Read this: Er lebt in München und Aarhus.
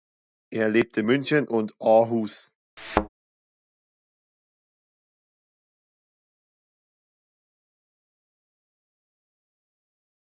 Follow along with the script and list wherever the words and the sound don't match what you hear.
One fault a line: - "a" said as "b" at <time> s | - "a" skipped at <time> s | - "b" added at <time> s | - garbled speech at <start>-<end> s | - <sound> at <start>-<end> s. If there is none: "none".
- thud at 2.8-3.1 s